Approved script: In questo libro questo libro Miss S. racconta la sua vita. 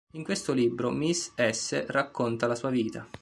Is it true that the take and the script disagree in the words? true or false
true